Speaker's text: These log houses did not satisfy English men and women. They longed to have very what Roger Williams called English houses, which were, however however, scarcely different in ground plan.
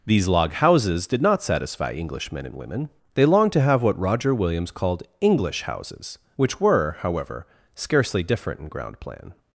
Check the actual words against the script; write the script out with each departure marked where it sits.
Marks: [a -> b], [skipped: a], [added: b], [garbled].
These log houses did not satisfy English men and women. They longed to have [skipped: very] what Roger Williams called English houses, which were, however [skipped: however,] scarcely different in ground plan.